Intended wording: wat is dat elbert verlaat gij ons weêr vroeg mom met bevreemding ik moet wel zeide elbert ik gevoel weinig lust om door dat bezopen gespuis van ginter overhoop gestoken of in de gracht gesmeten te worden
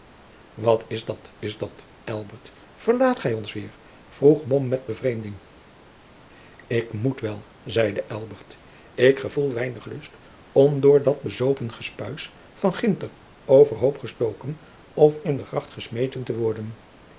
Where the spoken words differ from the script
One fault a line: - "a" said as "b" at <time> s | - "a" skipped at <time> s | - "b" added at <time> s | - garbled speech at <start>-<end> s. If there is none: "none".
- "is dat" added at 1.4 s